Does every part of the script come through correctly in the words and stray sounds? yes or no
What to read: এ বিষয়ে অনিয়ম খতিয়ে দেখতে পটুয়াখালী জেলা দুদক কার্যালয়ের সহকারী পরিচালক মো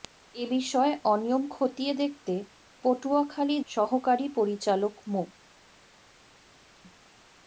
no